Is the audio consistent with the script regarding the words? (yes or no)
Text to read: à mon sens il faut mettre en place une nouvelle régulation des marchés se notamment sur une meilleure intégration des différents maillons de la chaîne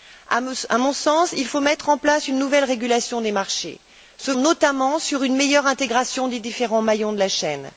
yes